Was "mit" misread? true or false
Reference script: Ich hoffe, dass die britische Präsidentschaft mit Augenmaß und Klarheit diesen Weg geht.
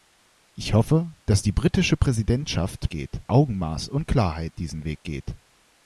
true